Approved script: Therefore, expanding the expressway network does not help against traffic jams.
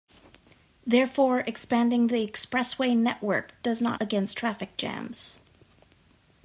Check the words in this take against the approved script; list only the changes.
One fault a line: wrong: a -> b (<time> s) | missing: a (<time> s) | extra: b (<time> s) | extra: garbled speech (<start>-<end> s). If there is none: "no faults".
missing: help (4.0 s)